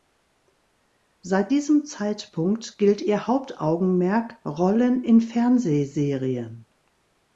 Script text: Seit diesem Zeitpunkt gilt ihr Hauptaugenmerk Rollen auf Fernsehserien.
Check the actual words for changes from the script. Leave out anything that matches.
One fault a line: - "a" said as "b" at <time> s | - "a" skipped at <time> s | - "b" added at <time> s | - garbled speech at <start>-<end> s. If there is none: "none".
- "auf" said as "in" at 5.0 s